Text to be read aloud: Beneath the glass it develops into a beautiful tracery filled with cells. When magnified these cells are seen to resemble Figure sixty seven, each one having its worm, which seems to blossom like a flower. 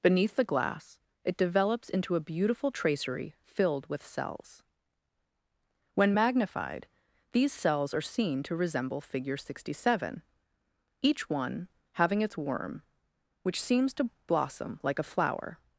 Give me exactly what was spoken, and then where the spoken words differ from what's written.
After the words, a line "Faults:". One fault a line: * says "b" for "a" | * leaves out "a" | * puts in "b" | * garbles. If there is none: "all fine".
Beneath the glass it develops into a beautiful tracery filled with cells. When magnified these cells are seen to resemble Figure sixty seven, each one having its worm, which seems to blossom like a flower.
Faults:
all fine